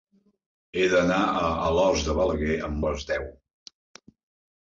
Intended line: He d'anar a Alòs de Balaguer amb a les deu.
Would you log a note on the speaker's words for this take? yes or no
no